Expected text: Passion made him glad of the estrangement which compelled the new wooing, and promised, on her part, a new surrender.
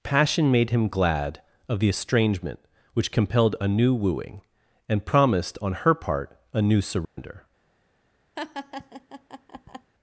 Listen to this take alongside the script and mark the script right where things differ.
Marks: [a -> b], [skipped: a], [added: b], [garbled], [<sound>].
Passion made him glad of the estrangement which compelled [the -> a] new wooing, and promised, on her part, a new surrender. [dropout] [laugh]